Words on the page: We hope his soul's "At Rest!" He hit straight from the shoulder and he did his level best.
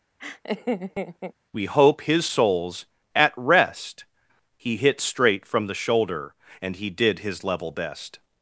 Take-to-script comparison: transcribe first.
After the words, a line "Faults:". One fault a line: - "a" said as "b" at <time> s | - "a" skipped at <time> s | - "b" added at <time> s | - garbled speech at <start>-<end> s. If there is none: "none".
We hope his soul's "At Rest!" He hit straight from the shoulder and he did his level best.
Faults:
none